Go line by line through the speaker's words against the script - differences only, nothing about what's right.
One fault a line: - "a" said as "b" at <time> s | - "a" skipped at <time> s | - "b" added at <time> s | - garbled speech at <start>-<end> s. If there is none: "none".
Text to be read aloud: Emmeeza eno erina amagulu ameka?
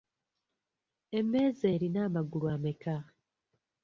- "eno" skipped at 1.6 s